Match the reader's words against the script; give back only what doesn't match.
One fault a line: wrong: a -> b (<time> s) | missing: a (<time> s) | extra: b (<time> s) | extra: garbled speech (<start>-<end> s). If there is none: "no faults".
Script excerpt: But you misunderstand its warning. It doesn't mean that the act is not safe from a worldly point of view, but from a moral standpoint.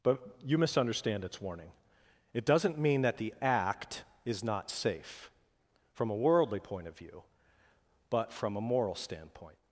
no faults